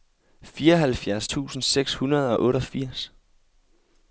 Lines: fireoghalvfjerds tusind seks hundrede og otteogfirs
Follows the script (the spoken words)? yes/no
yes